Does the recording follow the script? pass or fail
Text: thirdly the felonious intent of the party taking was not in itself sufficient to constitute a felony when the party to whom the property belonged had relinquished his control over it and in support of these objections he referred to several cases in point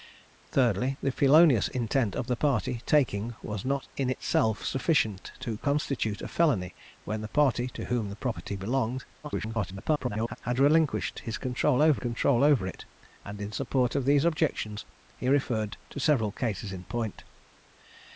fail